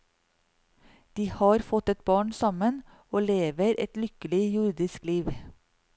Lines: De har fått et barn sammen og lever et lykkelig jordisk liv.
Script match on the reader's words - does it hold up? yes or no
yes